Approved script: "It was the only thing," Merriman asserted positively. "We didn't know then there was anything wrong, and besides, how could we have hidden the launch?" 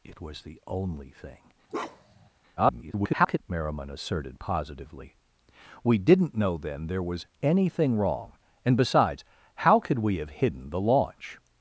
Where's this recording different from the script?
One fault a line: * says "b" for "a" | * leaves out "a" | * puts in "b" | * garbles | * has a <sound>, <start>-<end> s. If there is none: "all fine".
* has a bark, 1.7-2.3 s
* garbles